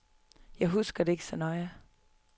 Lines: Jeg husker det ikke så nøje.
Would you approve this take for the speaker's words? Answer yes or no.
yes